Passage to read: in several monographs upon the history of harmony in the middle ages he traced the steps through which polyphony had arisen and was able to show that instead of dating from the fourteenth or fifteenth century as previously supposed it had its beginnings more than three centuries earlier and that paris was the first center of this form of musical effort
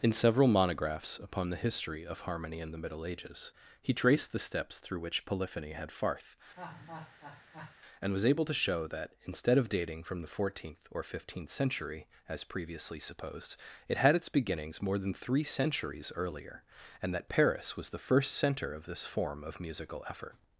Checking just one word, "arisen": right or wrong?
wrong